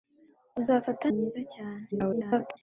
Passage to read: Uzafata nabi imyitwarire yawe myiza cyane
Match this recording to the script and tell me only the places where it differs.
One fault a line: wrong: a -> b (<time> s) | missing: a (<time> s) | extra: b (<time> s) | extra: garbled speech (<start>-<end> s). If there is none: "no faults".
missing: nabi imyitwarire yawe (1.1 s)
extra: garbled speech (1.9-2.6 s)